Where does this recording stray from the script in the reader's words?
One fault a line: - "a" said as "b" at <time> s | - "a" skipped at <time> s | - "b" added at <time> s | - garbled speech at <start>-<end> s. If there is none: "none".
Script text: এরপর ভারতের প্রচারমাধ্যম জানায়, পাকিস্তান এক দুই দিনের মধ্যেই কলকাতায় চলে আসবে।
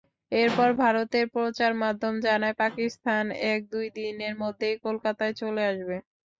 none